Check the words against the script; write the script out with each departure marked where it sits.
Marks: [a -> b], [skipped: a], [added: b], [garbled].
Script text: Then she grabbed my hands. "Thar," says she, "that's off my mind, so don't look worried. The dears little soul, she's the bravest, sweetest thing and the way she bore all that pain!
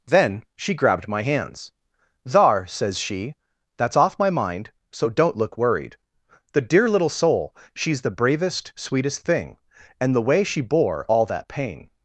Then she grabbed my hands. "Thar," says she, "that's off my mind, so don't look worried. The [dears -> dear] little soul, she's the bravest, sweetest thing and the way she bore all that pain!